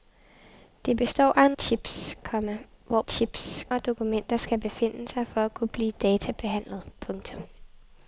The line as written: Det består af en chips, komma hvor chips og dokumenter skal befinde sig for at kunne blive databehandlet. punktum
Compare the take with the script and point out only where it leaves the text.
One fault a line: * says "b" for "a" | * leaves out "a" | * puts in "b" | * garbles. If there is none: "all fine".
all fine